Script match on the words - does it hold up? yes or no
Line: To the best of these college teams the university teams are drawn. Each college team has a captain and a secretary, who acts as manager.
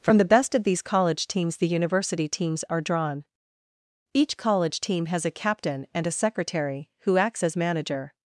no